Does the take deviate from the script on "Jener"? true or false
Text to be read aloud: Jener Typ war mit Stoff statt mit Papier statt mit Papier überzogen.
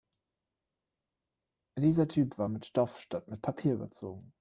true